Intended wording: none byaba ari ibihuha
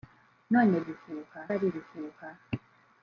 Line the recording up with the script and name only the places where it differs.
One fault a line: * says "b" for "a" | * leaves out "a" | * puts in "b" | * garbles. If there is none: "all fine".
* says "ibihuha" for "byaba"